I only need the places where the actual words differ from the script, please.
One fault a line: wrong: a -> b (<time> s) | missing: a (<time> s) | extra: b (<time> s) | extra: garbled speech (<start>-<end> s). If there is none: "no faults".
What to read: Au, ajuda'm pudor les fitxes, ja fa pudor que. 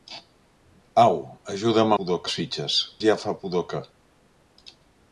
no faults